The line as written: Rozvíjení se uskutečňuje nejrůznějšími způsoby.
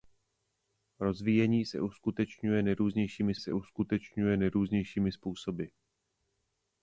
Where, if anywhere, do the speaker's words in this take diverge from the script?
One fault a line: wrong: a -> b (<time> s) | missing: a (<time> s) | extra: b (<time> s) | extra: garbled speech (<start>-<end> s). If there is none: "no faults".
extra: se uskutečňuje nejrůznějšími (3.4 s)